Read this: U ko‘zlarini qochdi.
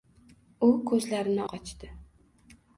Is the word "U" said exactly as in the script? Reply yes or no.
yes